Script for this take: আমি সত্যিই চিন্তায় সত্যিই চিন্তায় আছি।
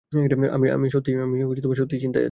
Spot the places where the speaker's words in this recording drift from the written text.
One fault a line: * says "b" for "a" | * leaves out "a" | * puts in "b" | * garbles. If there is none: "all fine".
* leaves out "সত্যিই চিন্তায়"